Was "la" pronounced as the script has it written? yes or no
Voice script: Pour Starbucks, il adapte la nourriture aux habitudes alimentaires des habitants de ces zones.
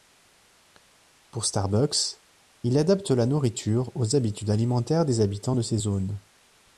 yes